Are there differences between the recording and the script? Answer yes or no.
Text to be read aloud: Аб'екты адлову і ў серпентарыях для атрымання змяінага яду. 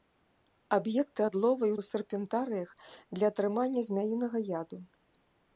no